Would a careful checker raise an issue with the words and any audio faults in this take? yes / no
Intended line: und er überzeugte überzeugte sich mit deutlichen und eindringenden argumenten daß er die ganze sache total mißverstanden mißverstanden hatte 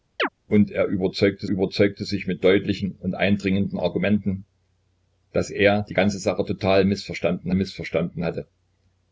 yes